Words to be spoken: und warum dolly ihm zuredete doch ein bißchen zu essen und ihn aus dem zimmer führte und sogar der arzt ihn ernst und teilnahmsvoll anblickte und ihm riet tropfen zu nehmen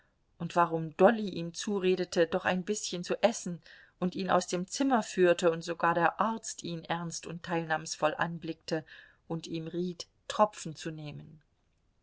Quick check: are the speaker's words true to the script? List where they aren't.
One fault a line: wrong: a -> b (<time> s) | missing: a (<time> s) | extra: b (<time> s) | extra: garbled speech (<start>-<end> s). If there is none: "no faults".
no faults